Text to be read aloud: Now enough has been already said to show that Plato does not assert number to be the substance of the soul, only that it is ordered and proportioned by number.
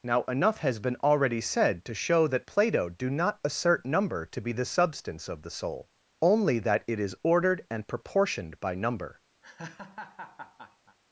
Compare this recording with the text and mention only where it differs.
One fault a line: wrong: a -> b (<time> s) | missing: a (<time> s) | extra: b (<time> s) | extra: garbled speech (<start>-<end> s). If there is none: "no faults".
wrong: does -> do (2.9 s)